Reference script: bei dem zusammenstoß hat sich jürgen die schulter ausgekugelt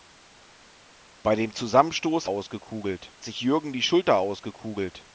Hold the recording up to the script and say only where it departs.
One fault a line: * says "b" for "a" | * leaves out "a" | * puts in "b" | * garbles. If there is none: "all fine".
* says "ausgekugelt" for "hat"